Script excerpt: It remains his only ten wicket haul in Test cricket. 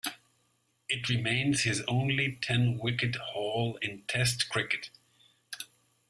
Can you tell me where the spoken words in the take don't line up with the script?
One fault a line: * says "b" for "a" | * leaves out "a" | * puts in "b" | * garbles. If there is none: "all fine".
all fine